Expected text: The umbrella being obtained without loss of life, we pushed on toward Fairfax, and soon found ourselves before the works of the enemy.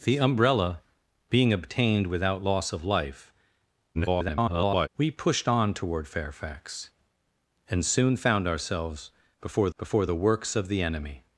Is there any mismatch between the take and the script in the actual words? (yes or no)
yes